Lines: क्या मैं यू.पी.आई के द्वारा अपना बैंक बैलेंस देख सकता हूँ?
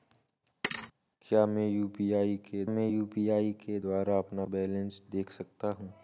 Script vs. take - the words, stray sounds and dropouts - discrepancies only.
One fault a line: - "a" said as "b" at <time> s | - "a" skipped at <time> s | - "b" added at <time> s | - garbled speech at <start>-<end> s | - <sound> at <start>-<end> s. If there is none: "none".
- thud at 0.6-0.9 s
- "मैं यू.पी.आई के" added at 2.7 s
- "बैंक" skipped at 4.4 s